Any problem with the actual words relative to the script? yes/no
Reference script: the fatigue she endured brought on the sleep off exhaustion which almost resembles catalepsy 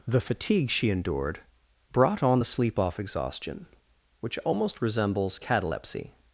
no